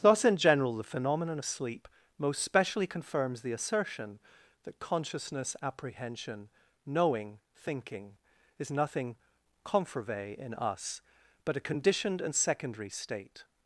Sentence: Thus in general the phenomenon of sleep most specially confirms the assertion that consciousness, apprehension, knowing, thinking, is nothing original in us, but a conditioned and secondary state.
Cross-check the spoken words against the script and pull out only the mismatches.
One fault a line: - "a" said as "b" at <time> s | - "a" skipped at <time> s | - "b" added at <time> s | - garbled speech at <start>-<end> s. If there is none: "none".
- "original" said as "confervae" at 9.6 s